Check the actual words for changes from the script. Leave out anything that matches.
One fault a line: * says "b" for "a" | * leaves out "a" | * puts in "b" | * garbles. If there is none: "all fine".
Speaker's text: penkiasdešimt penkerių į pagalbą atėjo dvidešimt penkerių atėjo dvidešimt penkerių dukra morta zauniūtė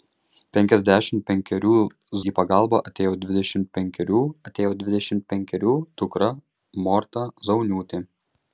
all fine